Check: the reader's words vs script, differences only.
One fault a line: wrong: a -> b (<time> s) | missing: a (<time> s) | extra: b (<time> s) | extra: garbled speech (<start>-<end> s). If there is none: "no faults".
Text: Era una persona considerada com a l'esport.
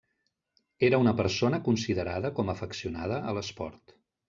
extra: afeccionada (2.5 s)